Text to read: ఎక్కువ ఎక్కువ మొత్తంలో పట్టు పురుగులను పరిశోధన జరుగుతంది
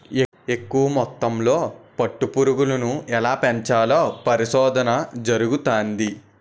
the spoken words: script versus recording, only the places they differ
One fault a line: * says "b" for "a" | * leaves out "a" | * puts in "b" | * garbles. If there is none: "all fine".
* leaves out "ఎక్కువ"
* puts in "ఎలా పెంచాలో"